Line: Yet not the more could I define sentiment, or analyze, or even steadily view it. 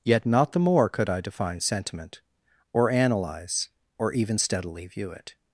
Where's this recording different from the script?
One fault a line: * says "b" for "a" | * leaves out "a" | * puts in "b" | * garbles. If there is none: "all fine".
all fine